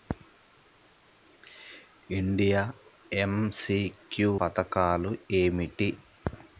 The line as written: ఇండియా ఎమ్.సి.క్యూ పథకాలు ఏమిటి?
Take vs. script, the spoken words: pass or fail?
pass